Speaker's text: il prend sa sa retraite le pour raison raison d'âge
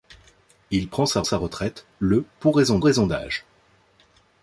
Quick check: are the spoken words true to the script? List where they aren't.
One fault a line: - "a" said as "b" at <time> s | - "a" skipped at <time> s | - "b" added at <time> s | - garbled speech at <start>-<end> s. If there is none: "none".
none